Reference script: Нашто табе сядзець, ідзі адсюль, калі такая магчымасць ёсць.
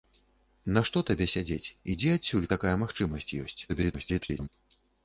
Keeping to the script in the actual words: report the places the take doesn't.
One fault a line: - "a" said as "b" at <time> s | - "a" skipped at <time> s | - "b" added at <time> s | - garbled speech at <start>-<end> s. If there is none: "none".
- "калі" skipped at 2.5 s
- garbled speech at 3.7-4.5 s